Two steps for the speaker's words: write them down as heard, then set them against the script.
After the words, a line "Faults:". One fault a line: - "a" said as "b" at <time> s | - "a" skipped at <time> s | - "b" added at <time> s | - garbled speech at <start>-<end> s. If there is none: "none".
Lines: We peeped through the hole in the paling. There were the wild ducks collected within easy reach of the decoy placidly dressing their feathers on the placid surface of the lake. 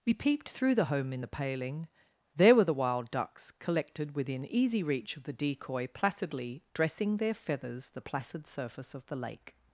We peeped through the home in the paling. There were the wild ducks collected within easy reach of the decoy placidly dressing their feathers the placid surface of the lake.
Faults:
- "hole" said as "home" at 0.8 s
- "on" skipped at 7.9 s